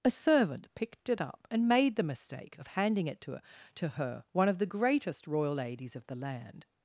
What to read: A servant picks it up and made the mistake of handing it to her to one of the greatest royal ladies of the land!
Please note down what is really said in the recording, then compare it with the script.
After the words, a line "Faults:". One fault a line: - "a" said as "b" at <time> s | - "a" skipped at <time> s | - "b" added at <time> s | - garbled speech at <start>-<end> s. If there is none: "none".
A servant picked it up and made the mistake of handing it to her to her, one of the greatest royal ladies of the land!
Faults:
- "picks" said as "picked" at 0.7 s
- "her" added at 3.9 s